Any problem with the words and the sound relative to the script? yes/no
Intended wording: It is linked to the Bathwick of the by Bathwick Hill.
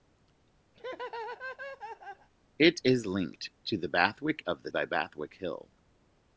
yes